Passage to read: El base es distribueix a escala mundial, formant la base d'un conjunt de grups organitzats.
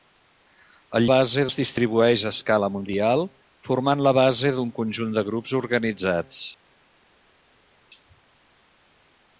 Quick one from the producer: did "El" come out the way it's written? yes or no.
yes